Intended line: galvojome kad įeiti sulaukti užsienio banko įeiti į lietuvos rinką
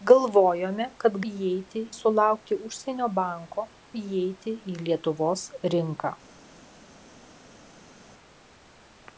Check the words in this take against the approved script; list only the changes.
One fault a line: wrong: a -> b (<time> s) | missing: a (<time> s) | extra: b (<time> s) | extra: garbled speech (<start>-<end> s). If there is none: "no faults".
no faults